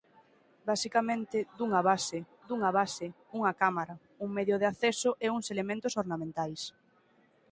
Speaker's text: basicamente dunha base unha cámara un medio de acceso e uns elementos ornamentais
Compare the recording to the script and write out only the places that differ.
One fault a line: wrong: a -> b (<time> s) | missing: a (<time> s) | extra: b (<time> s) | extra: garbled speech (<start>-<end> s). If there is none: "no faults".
extra: dunha base (2.5 s)